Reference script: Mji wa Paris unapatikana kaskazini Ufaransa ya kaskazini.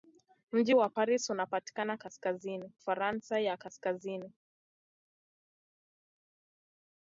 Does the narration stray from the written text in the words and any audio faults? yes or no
no